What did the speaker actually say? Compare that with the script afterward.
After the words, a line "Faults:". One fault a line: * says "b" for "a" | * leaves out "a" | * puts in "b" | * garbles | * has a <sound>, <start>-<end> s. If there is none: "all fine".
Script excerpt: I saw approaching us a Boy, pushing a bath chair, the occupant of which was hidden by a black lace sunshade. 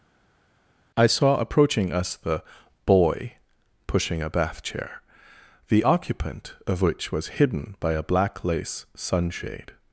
I saw approaching us the Boy, pushing a bath chair, the occupant of which was hidden by a black lace sunshade.
Faults:
* says "the" for "a"